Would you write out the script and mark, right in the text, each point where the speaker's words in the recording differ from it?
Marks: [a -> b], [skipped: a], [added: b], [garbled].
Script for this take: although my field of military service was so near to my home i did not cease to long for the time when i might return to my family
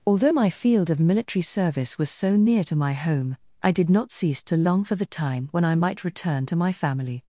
although my field of military service was so near to my home i did not cease to long for the time when i might return to my family